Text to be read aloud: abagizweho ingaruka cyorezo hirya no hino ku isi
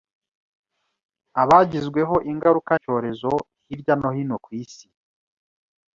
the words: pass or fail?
pass